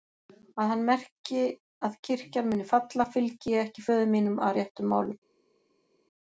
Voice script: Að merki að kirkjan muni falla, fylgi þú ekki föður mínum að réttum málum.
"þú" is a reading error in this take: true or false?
true